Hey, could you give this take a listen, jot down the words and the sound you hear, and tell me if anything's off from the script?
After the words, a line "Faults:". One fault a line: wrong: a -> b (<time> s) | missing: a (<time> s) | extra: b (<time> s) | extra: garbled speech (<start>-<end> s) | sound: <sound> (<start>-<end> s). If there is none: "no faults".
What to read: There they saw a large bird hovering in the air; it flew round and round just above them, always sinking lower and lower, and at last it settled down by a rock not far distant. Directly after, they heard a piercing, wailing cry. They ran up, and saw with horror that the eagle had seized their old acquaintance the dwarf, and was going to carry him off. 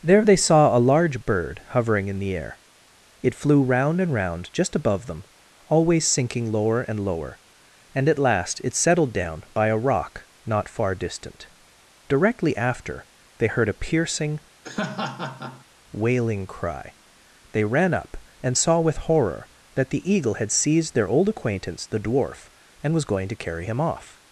There they saw a large bird hovering in the air; it flew round and round just above them, always sinking lower and lower, and at last it settled down by a rock not far distant. Directly after, they heard a piercing, wailing cry. They ran up, and saw with horror that the eagle had seized their old acquaintance the dwarf, and was going to carry him off.
Faults:
sound: laugh (14.6-15.7 s)